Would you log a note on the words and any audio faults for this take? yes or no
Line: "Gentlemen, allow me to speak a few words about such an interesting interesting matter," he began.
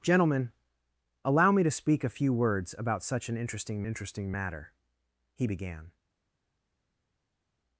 no